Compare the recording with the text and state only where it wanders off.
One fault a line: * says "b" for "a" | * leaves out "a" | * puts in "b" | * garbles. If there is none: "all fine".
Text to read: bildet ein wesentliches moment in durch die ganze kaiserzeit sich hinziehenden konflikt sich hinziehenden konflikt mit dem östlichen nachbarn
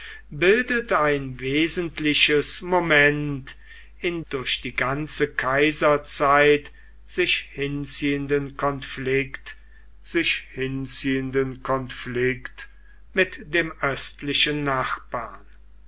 all fine